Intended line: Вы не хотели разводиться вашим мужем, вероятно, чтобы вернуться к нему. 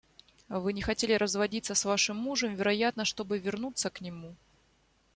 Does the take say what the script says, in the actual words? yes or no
no